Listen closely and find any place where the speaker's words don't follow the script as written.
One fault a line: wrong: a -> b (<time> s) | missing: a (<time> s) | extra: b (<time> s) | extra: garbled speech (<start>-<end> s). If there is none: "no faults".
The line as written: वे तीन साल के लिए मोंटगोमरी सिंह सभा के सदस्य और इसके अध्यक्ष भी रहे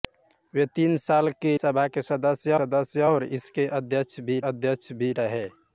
missing: लिए मोंटगोमरी सिंह (1.5 s)
extra: सदस्य (2.6 s)
extra: अध्यक्ष भी (4.5 s)